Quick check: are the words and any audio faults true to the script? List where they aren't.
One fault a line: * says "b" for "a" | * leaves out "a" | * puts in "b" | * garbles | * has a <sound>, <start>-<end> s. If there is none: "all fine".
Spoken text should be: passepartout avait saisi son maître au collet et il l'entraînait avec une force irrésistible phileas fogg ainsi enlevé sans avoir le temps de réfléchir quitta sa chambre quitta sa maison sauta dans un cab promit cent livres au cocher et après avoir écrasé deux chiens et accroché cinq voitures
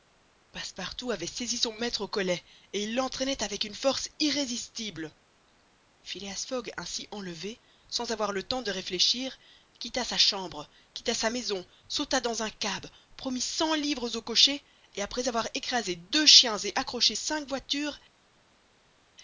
all fine